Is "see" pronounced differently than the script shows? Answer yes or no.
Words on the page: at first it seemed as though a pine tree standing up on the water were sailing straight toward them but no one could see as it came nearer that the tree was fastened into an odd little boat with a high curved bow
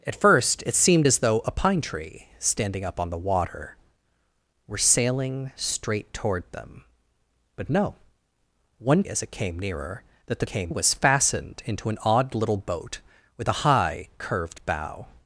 yes